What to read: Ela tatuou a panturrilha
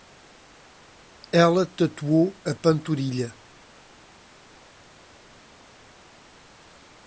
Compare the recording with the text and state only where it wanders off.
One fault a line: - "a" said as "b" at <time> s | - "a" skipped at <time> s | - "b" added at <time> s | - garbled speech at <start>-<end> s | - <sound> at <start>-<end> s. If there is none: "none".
none